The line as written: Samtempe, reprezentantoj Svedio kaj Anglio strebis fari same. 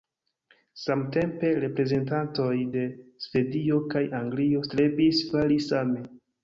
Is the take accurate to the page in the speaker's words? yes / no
no